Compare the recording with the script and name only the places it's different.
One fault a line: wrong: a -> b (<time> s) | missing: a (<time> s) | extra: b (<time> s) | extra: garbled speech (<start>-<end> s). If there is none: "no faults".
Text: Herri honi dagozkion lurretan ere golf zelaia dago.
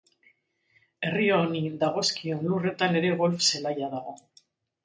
no faults